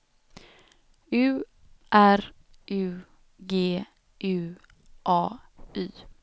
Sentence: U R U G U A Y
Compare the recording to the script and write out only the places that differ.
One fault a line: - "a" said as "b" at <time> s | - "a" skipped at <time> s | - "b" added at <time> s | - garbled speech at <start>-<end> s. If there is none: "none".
none